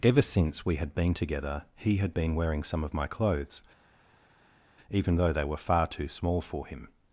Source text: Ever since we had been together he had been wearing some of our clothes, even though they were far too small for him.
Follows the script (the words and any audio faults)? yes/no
no